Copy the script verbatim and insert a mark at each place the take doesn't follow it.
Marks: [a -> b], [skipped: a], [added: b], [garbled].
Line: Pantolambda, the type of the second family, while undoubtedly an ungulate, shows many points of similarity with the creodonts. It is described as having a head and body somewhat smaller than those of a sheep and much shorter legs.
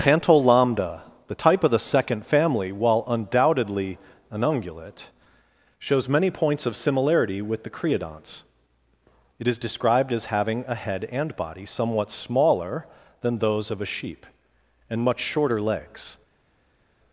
Pantolambda, the type of the second family, while undoubtedly an ungulate, shows many points of similarity with the creodonts. It is described as having a head and body somewhat smaller than those of a sheep and much shorter legs.